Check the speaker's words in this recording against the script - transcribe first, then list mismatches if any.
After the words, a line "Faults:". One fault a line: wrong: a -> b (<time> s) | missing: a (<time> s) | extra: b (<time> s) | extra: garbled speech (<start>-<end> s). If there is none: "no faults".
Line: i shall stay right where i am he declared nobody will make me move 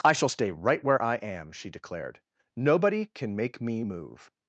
i shall stay right where i am she declared nobody can make me move
Faults:
wrong: he -> she (1.5 s)
wrong: will -> can (3.1 s)